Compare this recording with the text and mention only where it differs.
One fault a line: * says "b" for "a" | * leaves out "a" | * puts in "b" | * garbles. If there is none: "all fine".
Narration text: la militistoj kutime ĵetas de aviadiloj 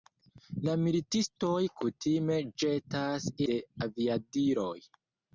all fine